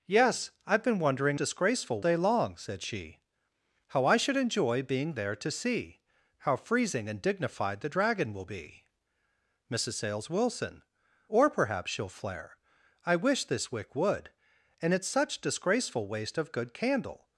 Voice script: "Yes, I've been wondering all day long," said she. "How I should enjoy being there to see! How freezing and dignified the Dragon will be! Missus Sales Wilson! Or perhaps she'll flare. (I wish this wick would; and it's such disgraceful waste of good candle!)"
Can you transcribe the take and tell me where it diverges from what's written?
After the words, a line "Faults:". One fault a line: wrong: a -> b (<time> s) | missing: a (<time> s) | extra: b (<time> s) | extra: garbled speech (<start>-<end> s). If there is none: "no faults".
"Yes, I've been wondering disgraceful day long," said she. "How I should enjoy being there to see! How freezing and dignified the Dragon will be! Missus Sales Wilson! Or perhaps she'll flare. (I wish this wick would; and it's such disgraceful waste of good candle!)"
Faults:
wrong: all -> disgraceful (1.3 s)